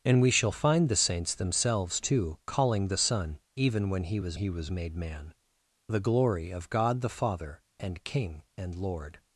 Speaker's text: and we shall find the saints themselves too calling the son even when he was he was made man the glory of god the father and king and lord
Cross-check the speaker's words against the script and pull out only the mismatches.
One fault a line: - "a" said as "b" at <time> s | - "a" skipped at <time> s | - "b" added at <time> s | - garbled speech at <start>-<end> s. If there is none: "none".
none